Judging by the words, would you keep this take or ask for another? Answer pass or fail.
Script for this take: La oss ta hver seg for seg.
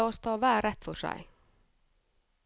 fail